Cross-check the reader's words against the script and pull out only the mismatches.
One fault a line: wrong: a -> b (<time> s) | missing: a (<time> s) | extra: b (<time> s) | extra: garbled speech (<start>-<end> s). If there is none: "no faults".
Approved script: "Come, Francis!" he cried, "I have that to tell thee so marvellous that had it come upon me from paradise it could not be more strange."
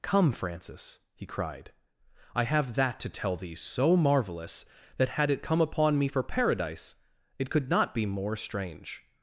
wrong: from -> for (6.0 s)